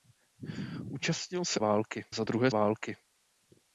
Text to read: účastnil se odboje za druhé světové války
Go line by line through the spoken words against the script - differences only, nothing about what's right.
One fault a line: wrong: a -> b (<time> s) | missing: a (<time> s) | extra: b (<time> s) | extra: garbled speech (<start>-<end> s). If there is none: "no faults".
wrong: odboje -> války (1.6 s)
missing: světové (2.5 s)